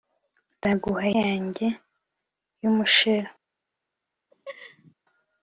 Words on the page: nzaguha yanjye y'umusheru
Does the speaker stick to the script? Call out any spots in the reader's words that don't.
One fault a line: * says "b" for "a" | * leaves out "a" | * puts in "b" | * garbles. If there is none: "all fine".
all fine